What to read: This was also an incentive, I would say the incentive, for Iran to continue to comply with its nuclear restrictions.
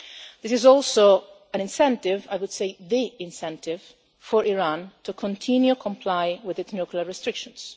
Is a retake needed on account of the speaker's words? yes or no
yes